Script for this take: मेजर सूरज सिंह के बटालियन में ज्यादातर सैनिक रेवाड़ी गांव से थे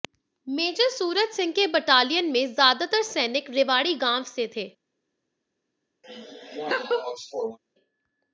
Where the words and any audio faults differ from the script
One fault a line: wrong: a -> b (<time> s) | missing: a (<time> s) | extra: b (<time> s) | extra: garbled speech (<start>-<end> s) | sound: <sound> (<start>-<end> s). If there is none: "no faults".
sound: laugh (6.0-7.6 s)